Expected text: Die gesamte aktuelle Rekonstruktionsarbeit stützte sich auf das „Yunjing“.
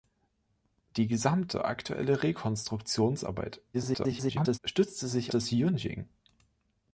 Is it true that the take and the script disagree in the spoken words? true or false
true